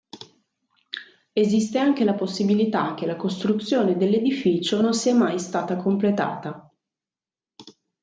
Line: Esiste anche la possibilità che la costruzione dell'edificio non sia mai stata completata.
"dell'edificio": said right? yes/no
yes